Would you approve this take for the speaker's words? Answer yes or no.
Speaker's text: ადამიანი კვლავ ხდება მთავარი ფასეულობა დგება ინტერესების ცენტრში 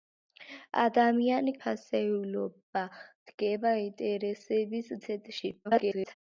no